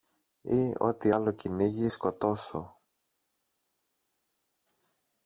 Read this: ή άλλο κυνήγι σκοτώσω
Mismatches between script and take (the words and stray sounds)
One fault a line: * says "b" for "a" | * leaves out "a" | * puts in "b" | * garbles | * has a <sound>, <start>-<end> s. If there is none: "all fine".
* puts in "ό,τι"